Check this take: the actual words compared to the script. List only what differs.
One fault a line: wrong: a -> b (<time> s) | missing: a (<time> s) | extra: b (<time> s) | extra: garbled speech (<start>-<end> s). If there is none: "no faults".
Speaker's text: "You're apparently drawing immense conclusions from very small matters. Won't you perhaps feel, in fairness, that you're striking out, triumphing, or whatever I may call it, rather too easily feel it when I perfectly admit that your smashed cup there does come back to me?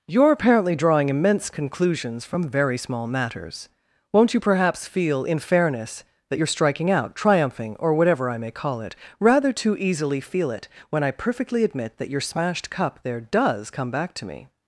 no faults